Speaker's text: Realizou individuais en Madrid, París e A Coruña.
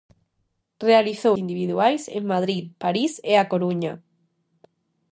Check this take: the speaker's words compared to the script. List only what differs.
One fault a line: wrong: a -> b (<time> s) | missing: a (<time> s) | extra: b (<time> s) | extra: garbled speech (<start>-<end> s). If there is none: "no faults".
no faults